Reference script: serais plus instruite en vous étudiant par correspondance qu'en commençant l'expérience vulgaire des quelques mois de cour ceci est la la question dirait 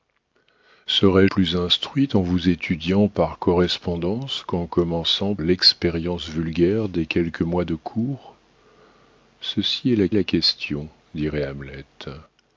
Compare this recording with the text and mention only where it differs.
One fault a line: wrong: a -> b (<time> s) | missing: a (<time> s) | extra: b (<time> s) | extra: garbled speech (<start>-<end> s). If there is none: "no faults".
no faults